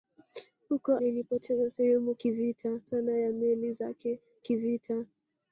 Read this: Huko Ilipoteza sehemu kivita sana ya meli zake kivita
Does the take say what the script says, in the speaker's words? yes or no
yes